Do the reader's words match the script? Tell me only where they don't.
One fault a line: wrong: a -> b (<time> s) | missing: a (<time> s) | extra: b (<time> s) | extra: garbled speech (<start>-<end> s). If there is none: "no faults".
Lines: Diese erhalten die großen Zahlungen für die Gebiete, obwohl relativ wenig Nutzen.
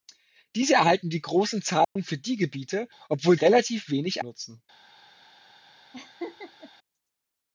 no faults